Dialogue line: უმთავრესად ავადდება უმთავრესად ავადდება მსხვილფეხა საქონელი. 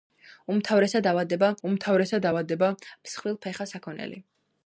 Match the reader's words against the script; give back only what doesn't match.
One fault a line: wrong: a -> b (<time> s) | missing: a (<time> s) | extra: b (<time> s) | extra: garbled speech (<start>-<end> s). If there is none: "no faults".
no faults